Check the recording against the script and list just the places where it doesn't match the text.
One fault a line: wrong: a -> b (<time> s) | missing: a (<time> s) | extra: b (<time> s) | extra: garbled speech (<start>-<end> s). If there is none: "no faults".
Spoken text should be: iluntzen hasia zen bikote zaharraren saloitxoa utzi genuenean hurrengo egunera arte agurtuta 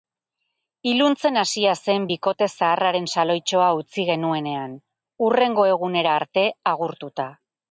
no faults